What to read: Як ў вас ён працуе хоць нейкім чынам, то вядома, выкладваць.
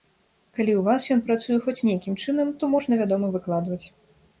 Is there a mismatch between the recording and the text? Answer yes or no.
yes